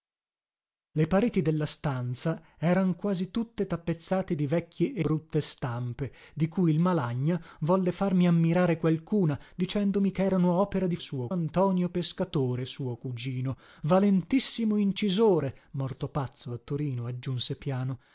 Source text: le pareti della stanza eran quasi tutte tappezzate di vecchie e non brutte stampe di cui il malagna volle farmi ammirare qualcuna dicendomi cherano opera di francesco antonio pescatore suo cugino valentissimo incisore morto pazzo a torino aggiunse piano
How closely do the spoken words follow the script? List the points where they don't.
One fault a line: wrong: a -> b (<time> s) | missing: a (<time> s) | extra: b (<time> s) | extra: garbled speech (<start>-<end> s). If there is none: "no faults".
missing: non (5.0 s)
wrong: francesco -> suo (11.0 s)